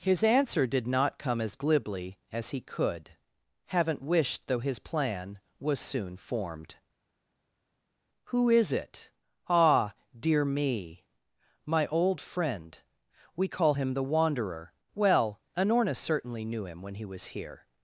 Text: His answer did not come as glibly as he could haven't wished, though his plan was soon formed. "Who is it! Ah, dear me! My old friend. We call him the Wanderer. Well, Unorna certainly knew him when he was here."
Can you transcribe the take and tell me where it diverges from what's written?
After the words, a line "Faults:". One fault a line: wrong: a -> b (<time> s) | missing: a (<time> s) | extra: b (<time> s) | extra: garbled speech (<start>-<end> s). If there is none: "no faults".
His answer did not come as glibly as he could haven't wished, though his plan was soon formed. "Who is it! Ah, dear me! My old friend. We call him the Wanderer. Well, Unorna certainly knew him when he was here."
Faults:
no faults